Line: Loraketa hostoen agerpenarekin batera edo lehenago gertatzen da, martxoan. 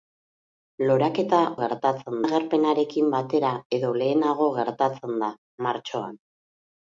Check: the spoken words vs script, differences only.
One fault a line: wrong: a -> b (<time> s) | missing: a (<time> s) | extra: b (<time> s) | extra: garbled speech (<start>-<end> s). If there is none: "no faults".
wrong: hostoen -> gertatzen (1.6 s)